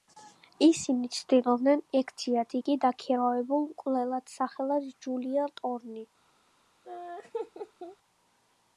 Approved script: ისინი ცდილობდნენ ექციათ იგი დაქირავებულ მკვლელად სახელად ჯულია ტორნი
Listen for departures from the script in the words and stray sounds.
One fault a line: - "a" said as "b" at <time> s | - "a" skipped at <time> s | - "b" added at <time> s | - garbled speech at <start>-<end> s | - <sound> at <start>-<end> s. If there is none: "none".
- laugh at 6.8-8.0 s